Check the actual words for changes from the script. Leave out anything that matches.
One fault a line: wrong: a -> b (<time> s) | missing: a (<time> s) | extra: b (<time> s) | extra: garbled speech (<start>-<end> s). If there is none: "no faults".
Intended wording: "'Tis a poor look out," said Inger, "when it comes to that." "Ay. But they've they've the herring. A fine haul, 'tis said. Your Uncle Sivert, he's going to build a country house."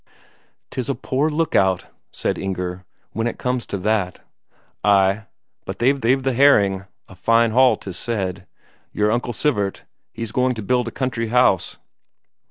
no faults